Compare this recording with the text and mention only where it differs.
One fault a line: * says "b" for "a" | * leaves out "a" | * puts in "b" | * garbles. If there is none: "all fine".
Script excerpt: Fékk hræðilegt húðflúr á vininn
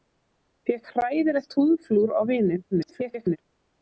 * garbles